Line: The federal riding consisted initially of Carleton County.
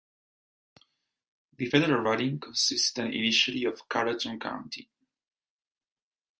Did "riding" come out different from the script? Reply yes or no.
no